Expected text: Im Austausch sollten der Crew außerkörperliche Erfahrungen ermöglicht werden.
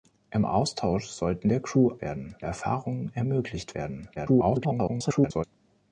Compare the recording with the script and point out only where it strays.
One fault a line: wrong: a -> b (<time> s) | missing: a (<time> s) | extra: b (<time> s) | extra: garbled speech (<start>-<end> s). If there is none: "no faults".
wrong: außerkörperliche -> werden (2.0 s)
extra: garbled speech (4.1-5.4 s)